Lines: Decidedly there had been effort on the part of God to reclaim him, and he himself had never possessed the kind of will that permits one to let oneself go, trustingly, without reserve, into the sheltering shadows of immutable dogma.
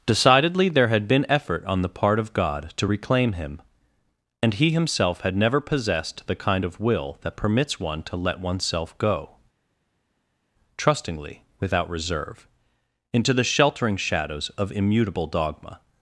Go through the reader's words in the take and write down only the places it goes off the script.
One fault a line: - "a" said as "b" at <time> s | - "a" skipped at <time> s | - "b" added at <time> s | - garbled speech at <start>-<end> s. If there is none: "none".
none